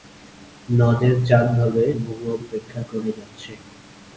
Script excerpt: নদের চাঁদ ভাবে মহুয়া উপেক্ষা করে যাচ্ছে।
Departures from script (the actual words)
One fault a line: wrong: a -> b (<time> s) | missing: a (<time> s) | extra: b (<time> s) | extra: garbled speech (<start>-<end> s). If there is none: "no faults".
no faults